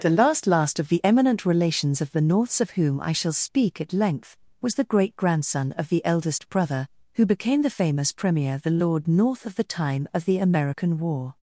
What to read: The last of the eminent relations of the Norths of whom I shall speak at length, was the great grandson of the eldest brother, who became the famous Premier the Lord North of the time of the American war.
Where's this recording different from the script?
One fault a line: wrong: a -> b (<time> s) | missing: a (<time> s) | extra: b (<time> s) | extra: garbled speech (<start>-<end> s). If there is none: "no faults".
extra: last (0.5 s)